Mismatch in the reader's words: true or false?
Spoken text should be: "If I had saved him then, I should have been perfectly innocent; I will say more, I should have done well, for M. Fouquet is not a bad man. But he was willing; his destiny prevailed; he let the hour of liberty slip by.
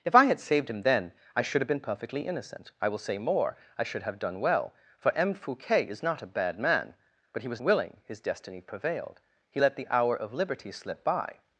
false